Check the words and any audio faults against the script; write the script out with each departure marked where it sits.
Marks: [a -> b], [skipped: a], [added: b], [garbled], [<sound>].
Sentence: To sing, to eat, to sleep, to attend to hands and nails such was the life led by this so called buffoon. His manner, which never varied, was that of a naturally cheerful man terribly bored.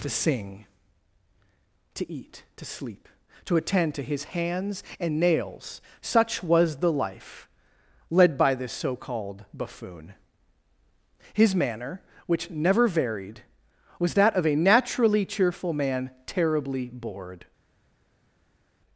To sing, to eat, to sleep, to attend to [added: his] hands and nails such was the life led by this so called buffoon. His manner, which never varied, was that of a naturally cheerful man terribly bored.